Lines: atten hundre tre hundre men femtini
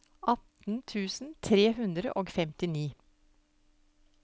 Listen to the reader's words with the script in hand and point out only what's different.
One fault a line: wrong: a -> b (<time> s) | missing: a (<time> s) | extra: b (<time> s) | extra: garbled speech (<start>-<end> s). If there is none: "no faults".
wrong: hundre -> tusen (0.9 s)
wrong: men -> og (2.2 s)